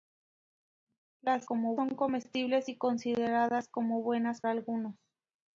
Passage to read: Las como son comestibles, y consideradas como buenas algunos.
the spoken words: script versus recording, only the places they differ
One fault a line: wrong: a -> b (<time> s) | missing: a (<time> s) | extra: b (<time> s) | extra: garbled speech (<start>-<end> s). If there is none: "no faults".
no faults